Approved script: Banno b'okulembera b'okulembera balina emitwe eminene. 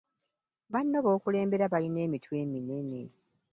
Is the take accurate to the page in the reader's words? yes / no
no